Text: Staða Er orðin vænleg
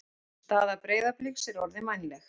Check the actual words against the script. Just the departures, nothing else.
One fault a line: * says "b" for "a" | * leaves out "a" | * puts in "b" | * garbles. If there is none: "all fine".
* puts in "Breiðabliks"